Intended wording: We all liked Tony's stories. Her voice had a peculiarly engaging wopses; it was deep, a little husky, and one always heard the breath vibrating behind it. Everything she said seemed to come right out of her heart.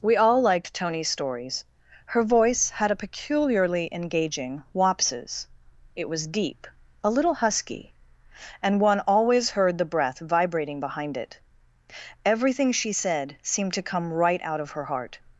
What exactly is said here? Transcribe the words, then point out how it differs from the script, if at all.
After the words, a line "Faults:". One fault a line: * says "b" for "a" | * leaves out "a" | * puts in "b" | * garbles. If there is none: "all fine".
We all liked Tony's stories. Her voice had a peculiarly engaging wopses; it was deep, a little husky, and one always heard the breath vibrating behind it. Everything she said seemed to come right out of her heart.
Faults:
all fine